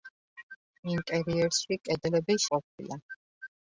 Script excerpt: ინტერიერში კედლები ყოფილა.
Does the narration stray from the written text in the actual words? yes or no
no